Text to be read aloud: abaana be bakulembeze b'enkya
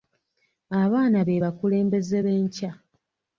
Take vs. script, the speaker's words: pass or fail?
pass